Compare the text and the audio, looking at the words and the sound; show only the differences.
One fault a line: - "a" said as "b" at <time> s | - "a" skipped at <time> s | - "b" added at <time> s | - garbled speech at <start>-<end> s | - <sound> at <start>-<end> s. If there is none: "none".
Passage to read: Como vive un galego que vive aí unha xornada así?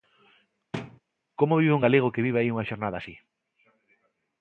- thud at 0.7-1.0 s